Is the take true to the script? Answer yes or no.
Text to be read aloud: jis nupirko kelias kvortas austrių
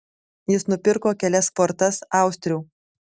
yes